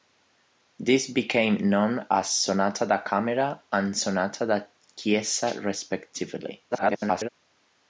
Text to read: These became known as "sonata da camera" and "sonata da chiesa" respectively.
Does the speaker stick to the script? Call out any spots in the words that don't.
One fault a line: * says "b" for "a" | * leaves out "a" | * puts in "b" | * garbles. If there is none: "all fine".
* garbles